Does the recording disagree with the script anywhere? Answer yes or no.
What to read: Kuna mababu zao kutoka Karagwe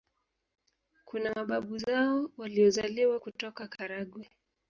yes